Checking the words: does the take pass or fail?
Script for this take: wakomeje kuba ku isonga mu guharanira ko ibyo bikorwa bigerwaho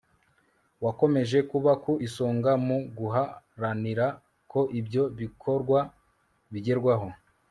pass